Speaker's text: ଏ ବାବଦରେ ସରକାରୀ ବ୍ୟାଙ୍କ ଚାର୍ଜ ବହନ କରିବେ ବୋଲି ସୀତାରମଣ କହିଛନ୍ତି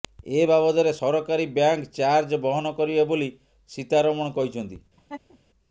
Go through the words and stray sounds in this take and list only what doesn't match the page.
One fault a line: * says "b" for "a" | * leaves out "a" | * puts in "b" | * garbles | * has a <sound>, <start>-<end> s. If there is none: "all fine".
* has a laugh, 5.0-5.4 s